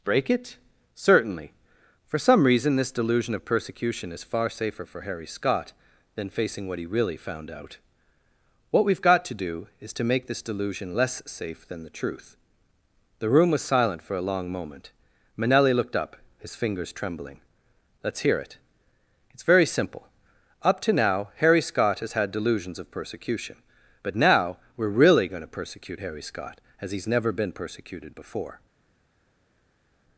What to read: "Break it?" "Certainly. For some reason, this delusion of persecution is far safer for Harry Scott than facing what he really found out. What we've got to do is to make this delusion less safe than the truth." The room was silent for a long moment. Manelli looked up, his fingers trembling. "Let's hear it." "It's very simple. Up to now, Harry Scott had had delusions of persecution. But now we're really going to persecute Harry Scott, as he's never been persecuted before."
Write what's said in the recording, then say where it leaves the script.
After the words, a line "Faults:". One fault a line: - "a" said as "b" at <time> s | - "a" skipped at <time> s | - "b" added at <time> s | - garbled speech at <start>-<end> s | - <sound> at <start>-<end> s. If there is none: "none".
"Break it?" "Certainly. For some reason, this delusion of persecution is far safer for Harry Scott than facing what he really found out. What we've got to do is to make this delusion less safe than the truth." The room was silent for a long moment. Manelli looked up, his fingers trembling. "Let's hear it." "It's very simple. Up to now, Harry Scott has had delusions of persecution. But now we're really going to persecute Harry Scott, as he's never been persecuted before."
Faults:
- "had" said as "has" at 22.0 s